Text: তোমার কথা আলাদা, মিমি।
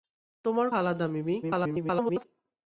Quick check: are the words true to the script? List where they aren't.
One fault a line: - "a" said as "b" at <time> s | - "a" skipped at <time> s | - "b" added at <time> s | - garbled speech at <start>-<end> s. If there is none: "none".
- "কথা" skipped at 0.7 s
- garbled speech at 1.4-2.2 s